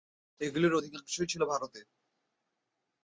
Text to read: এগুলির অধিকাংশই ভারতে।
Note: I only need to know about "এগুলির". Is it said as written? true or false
true